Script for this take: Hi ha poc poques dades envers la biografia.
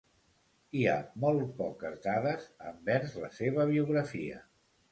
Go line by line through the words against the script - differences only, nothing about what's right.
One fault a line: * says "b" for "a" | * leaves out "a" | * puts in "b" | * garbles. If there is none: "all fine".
* says "molt" for "poc"
* puts in "seva"